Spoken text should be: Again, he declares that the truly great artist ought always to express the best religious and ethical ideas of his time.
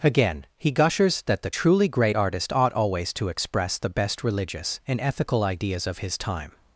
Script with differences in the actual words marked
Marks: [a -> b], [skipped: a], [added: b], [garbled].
Again, he [declares -> gushers] that the truly great artist ought always to express the best religious and ethical ideas of his time.